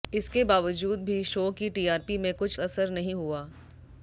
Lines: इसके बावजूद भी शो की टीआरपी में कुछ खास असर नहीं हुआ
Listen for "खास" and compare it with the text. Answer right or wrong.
wrong